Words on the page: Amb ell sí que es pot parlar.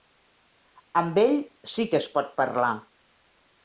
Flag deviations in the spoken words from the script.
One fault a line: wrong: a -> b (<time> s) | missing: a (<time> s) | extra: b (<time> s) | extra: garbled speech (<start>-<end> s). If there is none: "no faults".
no faults